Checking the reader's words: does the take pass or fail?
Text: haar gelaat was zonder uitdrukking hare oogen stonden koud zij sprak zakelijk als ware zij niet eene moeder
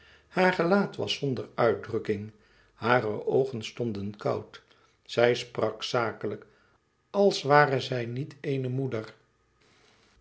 pass